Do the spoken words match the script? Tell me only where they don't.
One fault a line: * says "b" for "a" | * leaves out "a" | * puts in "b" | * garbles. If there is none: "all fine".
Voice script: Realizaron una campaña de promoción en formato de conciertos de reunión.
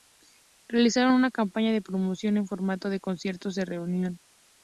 all fine